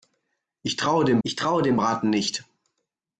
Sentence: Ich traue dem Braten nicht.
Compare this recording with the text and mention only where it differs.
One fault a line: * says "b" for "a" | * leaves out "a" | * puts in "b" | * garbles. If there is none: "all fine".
* puts in "ich traue dem"